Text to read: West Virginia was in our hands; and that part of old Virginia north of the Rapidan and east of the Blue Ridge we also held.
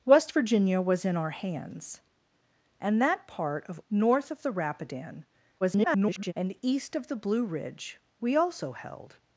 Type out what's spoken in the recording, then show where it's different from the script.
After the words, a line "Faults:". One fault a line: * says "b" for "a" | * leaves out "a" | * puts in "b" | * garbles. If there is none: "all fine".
West Virginia was in our hands; and that part of north of the Rapidan [garbled] and east of the Blue Ridge we also held.
Faults:
* leaves out "old Virginia"
* garbles